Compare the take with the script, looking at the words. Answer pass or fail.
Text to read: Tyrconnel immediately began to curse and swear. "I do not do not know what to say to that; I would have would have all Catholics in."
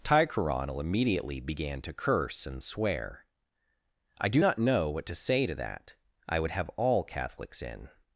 fail